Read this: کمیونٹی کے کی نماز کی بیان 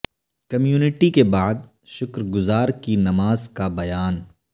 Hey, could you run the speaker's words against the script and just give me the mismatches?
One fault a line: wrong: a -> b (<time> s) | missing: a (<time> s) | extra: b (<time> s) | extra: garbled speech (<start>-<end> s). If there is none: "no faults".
extra: بعد شکر گزار (1.2 s)
wrong: کی -> کا (3.5 s)